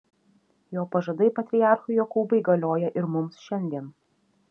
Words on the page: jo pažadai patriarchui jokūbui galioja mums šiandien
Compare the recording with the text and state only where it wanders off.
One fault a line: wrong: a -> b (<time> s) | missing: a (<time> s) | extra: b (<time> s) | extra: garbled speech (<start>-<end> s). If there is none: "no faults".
extra: ir (3.0 s)